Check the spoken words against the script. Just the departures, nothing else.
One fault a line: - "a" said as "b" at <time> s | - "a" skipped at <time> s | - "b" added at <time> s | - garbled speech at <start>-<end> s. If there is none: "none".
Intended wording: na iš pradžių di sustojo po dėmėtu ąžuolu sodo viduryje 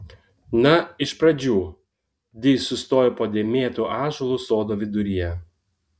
none